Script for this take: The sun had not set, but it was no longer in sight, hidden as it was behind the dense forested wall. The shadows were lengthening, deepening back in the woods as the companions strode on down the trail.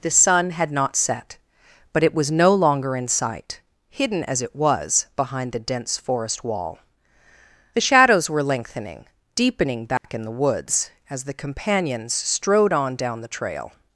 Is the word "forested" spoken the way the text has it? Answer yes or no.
no